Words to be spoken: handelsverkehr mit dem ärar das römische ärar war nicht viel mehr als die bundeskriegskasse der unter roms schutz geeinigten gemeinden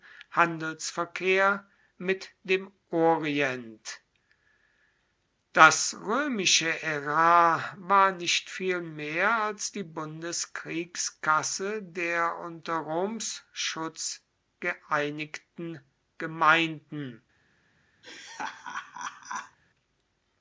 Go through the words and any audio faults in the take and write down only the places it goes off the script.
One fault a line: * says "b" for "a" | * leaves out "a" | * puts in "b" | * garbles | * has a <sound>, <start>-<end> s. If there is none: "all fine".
* says "orient" for "ärar"
* has a laugh, 18.0-19.6 s